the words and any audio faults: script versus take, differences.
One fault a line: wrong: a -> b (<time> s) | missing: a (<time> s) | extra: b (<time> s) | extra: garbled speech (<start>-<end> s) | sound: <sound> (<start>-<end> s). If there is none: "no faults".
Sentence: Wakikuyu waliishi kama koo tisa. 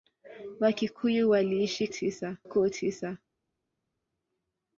wrong: kama -> tisa (1.9 s)